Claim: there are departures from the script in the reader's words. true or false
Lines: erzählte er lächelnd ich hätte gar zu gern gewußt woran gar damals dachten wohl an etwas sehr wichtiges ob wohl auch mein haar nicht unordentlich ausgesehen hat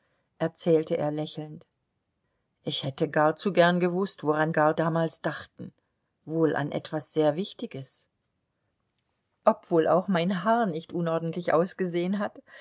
false